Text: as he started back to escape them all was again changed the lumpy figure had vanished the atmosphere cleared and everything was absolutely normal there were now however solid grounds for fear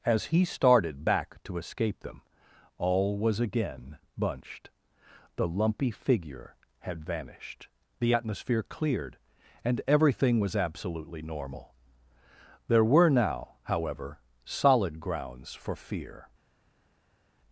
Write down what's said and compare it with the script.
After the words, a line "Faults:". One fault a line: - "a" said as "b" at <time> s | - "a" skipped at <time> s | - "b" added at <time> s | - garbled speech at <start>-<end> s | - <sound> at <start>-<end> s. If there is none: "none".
as he started back to escape them all was again bunched the lumpy figure had vanished the atmosphere cleared and everything was absolutely normal there were now however solid grounds for fear
Faults:
- "changed" said as "bunched" at 4.2 s